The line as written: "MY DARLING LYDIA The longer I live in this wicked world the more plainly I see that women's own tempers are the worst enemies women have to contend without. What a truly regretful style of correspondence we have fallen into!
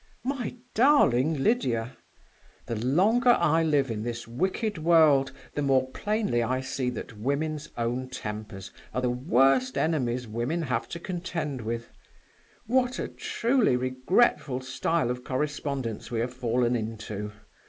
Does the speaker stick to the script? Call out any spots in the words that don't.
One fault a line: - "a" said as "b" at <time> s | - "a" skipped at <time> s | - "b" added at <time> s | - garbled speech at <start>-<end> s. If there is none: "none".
- "without" said as "with" at 11.6 s